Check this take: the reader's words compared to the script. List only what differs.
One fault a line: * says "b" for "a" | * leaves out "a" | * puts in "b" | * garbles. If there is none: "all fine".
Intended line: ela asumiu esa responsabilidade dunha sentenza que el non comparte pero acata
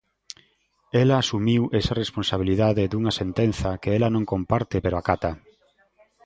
* says "ela" for "el"